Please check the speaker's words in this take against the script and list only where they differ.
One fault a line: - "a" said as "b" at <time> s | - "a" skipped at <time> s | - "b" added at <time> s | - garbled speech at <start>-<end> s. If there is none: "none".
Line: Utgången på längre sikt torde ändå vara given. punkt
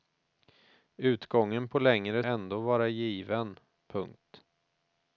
- "sikt torde" skipped at 2.2 s